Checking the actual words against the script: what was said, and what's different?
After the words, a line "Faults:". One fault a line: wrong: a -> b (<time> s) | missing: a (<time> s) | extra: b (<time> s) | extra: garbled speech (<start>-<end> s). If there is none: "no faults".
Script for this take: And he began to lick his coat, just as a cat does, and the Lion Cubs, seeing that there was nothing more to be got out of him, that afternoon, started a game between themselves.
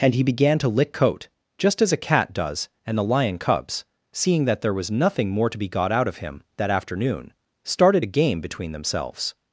And he began to lick coat, just as a cat does, and the Lion Cubs, seeing that there was nothing more to be got out of him, that afternoon, started a game between themselves.
Faults:
missing: his (0.9 s)